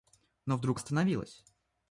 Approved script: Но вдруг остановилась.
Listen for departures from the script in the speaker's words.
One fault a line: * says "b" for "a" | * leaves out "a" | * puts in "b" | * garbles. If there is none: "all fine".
all fine